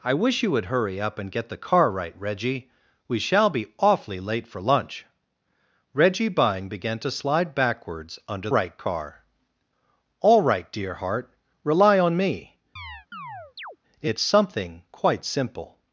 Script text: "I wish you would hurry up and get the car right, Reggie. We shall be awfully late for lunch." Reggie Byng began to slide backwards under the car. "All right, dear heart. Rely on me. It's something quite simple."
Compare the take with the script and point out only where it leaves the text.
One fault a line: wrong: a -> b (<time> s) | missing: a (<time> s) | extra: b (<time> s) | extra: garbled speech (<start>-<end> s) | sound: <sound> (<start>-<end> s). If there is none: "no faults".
wrong: the -> right (8.5 s)
sound: chirp (12.8-13.8 s)